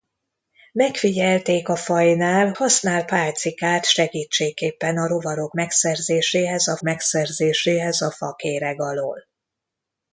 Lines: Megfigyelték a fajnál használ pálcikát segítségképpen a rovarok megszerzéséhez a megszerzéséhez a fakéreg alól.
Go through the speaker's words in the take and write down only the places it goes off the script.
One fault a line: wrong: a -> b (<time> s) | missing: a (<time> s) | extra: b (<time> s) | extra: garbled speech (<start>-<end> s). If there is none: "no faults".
no faults